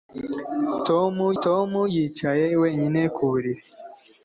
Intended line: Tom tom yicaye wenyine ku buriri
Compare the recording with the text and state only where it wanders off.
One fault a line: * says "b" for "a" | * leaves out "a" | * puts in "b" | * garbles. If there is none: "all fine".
all fine